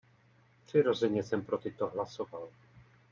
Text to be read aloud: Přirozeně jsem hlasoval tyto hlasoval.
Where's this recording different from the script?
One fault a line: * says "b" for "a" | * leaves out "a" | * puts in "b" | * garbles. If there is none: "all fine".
* says "pro" for "hlasoval"